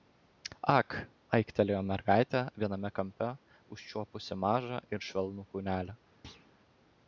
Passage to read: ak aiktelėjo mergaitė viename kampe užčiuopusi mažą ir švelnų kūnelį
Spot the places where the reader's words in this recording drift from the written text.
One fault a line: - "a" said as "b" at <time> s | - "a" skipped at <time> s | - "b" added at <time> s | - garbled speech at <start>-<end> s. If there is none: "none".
none